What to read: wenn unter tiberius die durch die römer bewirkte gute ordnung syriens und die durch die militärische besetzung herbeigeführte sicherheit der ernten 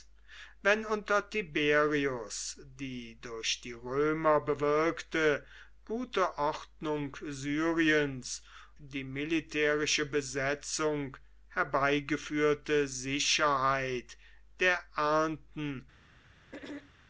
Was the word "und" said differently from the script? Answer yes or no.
yes